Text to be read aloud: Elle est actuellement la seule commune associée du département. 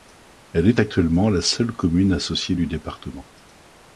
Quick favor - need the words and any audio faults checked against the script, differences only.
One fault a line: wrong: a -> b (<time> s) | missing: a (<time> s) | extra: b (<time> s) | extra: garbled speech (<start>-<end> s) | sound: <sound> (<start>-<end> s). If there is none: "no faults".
no faults